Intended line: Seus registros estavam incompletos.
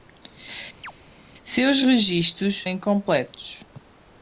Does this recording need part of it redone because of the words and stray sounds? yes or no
yes